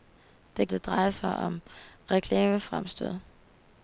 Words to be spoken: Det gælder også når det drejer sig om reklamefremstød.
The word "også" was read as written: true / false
false